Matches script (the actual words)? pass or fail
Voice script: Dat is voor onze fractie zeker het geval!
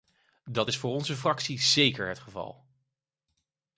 pass